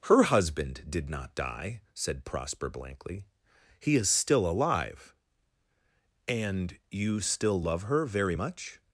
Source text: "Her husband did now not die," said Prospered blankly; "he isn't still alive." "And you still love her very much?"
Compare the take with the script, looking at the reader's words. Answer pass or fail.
fail